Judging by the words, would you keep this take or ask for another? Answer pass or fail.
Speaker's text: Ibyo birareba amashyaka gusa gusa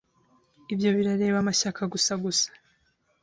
pass